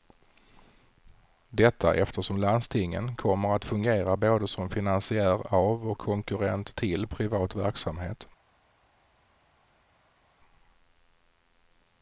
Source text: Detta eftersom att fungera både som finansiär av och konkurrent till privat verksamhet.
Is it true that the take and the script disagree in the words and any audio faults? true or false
true